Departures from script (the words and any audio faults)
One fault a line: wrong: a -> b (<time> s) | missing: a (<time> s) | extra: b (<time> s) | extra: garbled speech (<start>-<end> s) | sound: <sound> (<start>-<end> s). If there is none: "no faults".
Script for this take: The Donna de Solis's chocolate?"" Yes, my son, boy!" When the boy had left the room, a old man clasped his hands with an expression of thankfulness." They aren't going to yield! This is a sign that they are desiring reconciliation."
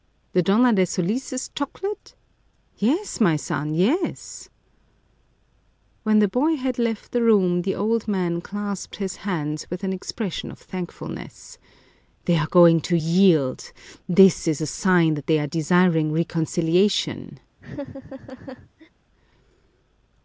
wrong: boy -> yes (3.8 s)
wrong: a -> the (7.6 s)
wrong: aren't -> are (12.4 s)
sound: laugh (17.6-18.9 s)